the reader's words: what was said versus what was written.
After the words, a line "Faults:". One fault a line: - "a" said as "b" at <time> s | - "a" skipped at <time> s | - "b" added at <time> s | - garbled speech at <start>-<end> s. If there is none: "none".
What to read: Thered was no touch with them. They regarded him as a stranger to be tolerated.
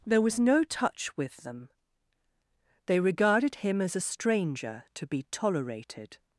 There was no touch with them. They regarded him as a stranger to be tolerated.
Faults:
- "Thered" said as "There" at 0.0 s